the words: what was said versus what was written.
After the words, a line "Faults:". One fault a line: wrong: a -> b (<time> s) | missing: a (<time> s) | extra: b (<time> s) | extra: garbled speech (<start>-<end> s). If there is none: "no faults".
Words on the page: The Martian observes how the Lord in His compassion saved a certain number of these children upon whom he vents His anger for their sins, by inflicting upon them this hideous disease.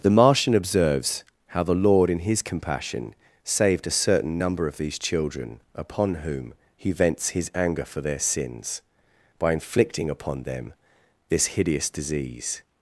The Martian observes how the Lord in His compassion saved a certain number of these children upon whom he vents His anger for their sins, by inflicting upon them this hideous disease.
Faults:
no faults